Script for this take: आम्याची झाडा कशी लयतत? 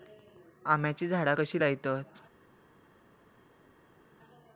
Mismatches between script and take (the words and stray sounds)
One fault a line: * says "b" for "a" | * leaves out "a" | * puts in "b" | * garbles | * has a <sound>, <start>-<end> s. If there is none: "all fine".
all fine